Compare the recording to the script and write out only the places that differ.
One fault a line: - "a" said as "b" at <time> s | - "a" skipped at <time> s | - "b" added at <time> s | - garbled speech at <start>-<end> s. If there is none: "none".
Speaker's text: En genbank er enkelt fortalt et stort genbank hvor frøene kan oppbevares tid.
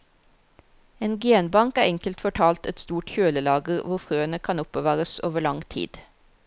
- "genbank" said as "kjølelager" at 3.1 s
- "over lang" added at 5.3 s